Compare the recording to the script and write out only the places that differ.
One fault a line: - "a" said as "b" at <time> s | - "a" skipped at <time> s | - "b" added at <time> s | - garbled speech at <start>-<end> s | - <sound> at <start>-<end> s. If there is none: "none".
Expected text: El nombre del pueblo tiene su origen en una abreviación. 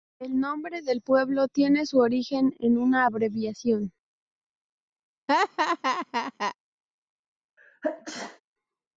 - laugh at 5.3-6.6 s
- sneeze at 7.6-8.4 s